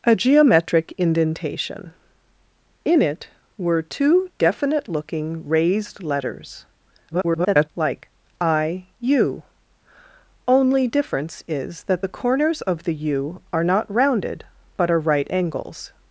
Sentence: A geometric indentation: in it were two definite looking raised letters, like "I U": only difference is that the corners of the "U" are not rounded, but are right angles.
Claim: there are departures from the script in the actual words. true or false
true